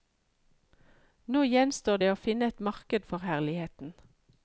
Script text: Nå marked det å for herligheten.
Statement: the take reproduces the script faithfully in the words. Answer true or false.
false